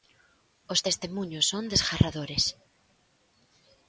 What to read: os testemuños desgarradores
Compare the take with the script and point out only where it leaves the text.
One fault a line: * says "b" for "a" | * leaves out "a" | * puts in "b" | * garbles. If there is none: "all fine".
* puts in "son"